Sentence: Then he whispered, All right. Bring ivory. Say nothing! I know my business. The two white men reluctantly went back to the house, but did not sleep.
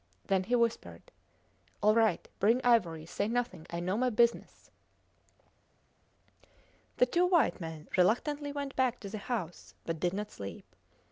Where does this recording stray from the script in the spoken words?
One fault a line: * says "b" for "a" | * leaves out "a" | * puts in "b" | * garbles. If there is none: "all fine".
all fine